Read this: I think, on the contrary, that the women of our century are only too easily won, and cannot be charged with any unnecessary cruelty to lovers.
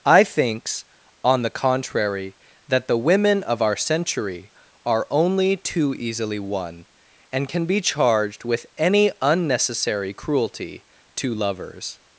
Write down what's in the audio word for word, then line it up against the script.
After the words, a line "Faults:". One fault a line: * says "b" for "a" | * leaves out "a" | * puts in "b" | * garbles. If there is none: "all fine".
I thinks, on the contrary, that the women of our century are only too easily won, and can be charged with any unnecessary cruelty to lovers.
Faults:
* says "thinks" for "think"
* says "can" for "cannot"